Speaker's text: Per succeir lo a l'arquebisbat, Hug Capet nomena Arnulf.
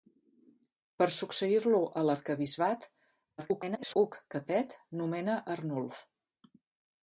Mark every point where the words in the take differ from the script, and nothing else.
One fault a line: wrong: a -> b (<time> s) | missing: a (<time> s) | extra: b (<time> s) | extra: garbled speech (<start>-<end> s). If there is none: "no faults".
extra: garbled speech (3.4-3.9 s)